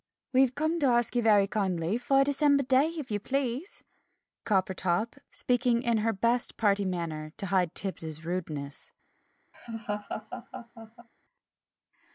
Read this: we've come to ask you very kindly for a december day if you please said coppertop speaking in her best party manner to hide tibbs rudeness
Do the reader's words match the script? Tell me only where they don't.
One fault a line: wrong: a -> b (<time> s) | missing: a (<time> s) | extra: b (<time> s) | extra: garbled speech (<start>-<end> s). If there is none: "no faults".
missing: said (3.8 s)